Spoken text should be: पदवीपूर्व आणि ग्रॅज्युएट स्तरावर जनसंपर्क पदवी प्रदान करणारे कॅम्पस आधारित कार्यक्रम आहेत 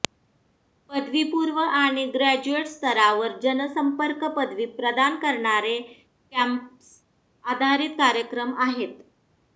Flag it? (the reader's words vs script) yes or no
no